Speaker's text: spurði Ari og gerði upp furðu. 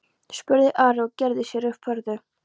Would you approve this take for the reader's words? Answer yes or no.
no